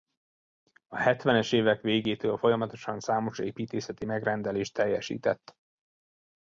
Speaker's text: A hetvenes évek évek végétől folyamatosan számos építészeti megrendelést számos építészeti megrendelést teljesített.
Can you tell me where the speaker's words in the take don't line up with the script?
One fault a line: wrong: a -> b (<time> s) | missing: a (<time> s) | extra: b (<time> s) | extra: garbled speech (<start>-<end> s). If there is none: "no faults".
missing: évek (1.8 s)
missing: számos építészeti megrendelést (4.7 s)